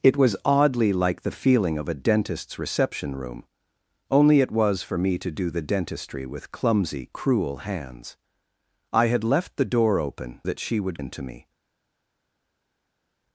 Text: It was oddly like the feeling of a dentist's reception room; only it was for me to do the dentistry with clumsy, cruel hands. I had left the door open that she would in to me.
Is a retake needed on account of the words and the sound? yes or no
no